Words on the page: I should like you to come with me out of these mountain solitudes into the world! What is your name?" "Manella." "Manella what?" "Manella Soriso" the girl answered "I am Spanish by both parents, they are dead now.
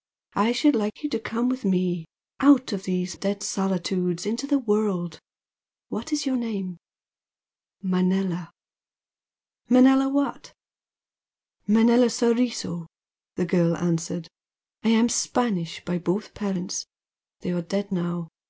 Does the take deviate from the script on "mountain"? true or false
true